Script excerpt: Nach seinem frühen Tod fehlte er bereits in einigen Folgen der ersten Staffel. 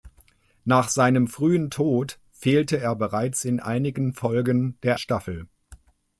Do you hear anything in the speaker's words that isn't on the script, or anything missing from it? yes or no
yes